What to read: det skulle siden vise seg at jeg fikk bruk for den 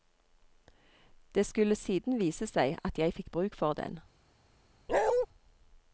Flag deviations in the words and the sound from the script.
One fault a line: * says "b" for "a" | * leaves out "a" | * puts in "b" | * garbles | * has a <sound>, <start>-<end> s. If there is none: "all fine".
* has a bark, 4.9-5.3 s